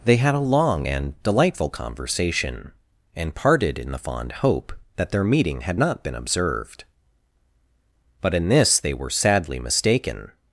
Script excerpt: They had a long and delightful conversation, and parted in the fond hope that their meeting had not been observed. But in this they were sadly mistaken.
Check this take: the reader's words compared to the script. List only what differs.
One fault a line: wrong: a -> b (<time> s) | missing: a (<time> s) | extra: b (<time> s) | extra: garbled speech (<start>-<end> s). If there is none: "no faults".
no faults